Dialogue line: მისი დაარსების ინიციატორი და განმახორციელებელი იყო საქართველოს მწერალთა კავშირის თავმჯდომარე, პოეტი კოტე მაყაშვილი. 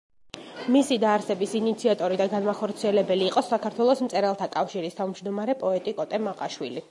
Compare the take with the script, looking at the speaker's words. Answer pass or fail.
pass